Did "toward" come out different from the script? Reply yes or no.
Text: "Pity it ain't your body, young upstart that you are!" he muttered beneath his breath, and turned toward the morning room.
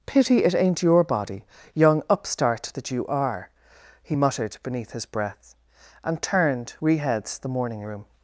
yes